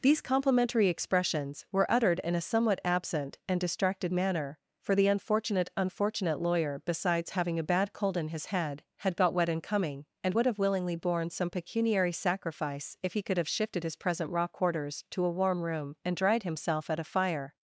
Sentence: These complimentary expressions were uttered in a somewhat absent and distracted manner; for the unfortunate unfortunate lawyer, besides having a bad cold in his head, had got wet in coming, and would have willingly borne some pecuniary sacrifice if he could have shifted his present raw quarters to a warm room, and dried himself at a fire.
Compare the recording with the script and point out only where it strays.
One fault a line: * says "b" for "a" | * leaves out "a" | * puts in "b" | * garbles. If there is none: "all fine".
all fine